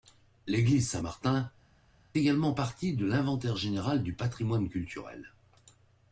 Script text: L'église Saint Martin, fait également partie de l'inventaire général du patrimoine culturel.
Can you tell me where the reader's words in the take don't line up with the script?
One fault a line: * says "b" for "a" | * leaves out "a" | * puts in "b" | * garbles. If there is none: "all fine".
* leaves out "fait"